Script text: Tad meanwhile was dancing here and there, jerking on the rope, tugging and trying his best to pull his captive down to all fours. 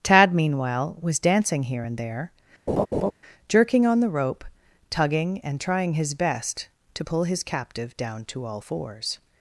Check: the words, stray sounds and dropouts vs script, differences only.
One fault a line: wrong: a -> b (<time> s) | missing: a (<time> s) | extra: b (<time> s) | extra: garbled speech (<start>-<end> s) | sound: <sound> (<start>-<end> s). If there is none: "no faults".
sound: laugh (2.7-3.1 s)